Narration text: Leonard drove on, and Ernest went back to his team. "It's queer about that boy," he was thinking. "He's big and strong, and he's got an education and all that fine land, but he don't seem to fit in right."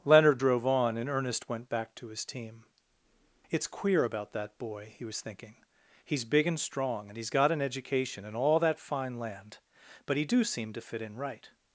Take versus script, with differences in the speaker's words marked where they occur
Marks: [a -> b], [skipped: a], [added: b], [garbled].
Leonard drove on, and Ernest went back to his team. "It's queer about that boy," he was thinking. "He's big and strong, and he's got an education and all that fine land, but he [don't -> do] seem to fit in right."